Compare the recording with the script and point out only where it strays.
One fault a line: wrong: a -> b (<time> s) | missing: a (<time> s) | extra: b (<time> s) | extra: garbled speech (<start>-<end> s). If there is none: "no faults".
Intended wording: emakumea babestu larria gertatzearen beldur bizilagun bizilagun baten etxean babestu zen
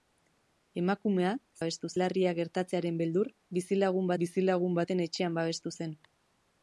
no faults